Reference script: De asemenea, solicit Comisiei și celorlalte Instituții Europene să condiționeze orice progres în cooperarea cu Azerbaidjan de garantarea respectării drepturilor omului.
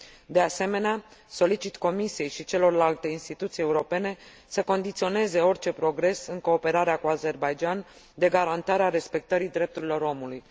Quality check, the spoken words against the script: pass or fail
pass